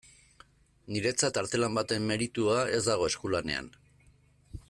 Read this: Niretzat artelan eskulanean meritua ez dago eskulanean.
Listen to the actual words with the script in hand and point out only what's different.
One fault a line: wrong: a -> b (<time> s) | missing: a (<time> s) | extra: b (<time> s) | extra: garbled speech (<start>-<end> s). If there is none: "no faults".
wrong: eskulanean -> baten (1.8 s)